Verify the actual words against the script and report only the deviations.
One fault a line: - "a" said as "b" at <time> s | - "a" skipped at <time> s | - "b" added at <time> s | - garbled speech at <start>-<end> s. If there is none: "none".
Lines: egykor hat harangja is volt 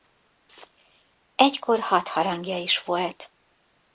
none